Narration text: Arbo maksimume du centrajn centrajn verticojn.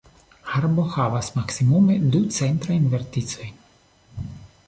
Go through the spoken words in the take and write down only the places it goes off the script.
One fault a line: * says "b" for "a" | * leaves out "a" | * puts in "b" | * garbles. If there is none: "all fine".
* puts in "havas"
* leaves out "centrajn"